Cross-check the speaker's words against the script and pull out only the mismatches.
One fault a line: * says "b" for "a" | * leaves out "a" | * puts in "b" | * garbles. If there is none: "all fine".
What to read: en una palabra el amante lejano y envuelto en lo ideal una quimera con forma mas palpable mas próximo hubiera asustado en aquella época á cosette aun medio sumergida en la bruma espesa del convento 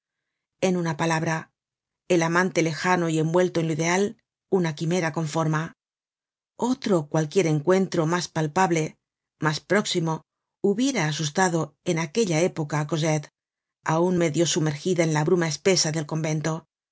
* puts in "otro cualquier encuentro"